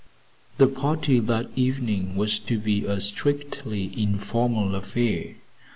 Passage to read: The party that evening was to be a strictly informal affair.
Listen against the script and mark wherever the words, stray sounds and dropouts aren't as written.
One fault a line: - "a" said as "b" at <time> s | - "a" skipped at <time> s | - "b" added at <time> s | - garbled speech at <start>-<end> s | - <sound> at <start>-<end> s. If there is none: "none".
none